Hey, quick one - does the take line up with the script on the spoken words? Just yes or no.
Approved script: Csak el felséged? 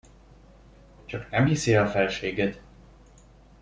no